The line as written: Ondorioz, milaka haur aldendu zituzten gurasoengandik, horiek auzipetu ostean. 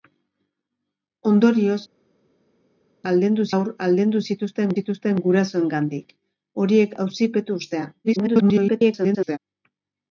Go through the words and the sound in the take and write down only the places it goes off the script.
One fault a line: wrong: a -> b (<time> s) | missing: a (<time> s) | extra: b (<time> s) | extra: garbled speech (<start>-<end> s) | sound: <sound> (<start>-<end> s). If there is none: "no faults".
wrong: milaka -> aldendu (3.1 s)
extra: zituzten (4.8 s)
extra: garbled speech (8.0-9.4 s)